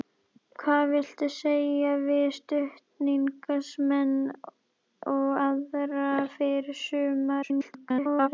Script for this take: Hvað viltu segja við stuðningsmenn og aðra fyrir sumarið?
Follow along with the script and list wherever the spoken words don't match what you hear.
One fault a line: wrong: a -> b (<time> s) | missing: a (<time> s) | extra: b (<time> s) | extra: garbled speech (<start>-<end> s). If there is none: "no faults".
extra: garbled speech (7.4-8.3 s)